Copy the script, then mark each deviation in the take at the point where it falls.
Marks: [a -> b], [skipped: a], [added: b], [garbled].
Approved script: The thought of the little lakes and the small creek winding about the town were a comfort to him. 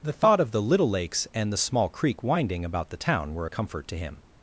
The thought of the little lakes and the small creek winding about the town were a comfort to him.